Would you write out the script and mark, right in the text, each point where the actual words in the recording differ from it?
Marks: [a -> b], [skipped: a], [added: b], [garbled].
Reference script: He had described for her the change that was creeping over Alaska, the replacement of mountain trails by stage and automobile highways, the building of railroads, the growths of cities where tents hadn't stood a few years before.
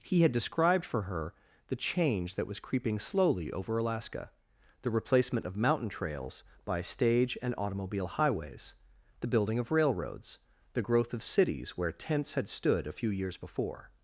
He had described for her the change that was creeping [added: slowly] over Alaska, the replacement of mountain trails by stage and automobile highways, the building of railroads, the [growths -> growth] of cities where tents [hadn't -> had] stood a few years before.